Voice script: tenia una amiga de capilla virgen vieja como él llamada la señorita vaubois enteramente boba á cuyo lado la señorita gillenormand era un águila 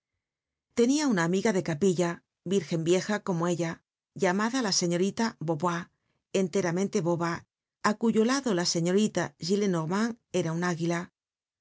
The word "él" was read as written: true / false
false